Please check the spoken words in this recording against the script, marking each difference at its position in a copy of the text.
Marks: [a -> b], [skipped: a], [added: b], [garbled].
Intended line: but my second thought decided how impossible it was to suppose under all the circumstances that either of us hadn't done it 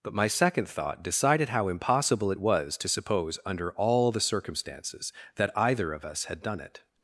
but my second thought decided how impossible it was to suppose under all the circumstances that either of us [hadn't -> had] done it